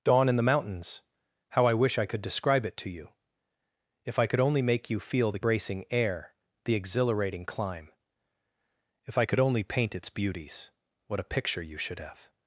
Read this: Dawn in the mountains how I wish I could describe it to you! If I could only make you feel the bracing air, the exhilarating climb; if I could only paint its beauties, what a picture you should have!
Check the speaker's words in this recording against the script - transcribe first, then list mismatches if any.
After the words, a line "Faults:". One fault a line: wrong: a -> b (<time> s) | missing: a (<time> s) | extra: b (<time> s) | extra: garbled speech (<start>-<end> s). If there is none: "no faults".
Dawn in the mountains how I wish I could describe it to you! If I could only make you feel the bracing air, the exhilarating climb; if I could only paint its beauties, what a picture you should have!
Faults:
no faults